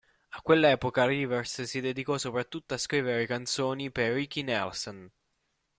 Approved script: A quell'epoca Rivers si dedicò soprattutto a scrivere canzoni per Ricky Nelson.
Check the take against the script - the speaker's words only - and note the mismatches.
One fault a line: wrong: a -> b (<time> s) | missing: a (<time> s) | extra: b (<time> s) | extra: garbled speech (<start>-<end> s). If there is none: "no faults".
no faults